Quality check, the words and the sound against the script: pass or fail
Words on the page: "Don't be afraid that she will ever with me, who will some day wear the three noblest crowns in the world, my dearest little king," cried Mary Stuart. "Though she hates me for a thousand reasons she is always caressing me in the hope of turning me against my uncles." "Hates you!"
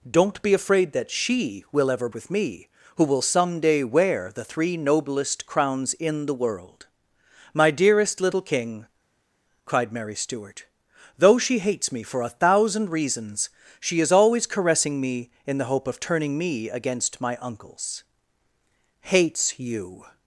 pass